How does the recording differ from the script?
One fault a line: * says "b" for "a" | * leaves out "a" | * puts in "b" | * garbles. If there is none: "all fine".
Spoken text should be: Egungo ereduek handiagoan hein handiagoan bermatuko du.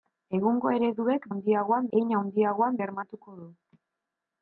all fine